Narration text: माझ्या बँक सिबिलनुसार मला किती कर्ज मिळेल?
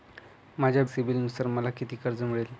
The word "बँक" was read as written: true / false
false